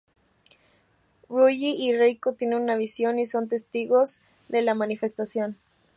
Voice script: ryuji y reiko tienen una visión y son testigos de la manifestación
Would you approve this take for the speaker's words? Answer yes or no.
yes